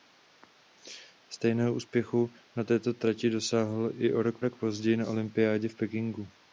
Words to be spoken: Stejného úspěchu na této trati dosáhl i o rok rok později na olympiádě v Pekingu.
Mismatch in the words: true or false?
false